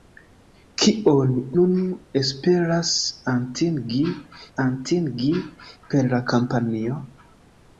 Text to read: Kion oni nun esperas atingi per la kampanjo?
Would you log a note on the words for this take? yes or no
yes